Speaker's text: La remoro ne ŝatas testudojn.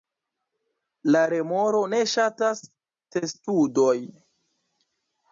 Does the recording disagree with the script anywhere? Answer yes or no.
no